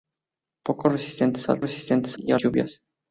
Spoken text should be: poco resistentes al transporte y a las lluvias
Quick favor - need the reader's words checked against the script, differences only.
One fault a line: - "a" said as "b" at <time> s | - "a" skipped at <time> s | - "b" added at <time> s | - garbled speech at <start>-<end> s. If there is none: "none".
- "transporte" said as "resistentes" at 1.6 s
- "las" skipped at 2.4 s